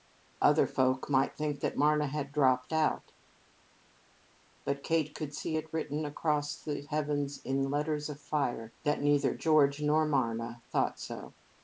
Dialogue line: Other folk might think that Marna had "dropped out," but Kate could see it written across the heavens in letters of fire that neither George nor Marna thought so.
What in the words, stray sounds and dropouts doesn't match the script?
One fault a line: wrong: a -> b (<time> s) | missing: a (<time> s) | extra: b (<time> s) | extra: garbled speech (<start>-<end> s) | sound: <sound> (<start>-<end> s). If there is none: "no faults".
no faults